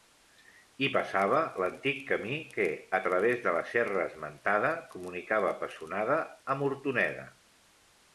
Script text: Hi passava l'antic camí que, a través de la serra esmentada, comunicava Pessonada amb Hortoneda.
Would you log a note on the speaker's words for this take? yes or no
no